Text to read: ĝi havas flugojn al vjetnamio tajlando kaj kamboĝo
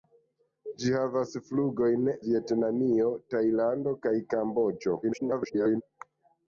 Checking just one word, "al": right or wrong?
wrong